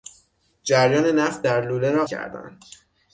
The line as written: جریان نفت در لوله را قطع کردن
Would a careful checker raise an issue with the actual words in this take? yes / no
yes